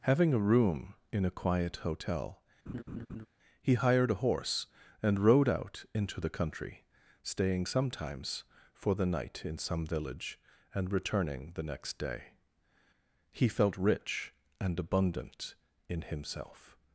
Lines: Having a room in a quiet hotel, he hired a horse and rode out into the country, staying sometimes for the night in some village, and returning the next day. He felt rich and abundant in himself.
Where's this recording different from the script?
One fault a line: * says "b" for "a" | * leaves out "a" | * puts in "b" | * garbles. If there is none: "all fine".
all fine